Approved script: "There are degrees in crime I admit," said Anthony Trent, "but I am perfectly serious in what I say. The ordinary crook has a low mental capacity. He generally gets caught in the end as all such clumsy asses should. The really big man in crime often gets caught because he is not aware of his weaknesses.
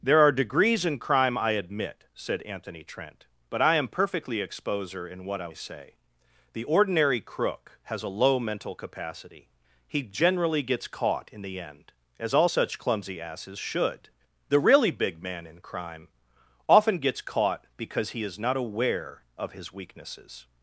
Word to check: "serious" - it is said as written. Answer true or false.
false